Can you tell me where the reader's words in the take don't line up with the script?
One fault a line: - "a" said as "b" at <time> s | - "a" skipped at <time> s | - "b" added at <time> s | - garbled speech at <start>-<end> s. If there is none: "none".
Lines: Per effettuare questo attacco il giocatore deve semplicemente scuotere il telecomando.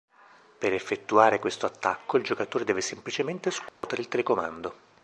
none